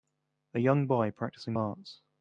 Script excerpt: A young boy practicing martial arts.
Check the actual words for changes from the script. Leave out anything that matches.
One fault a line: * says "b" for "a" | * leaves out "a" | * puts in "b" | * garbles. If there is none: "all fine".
* leaves out "martial"